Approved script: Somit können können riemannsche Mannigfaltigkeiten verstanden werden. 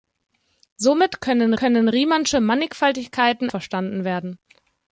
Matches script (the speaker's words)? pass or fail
pass